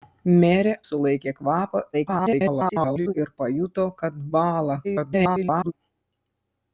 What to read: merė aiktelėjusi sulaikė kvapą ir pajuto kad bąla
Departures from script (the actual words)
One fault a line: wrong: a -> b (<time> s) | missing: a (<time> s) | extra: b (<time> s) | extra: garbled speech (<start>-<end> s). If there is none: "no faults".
missing: aiktelėjusi (0.7 s)
extra: garbled speech (1.9-3.1 s)
extra: garbled speech (4.8-5.7 s)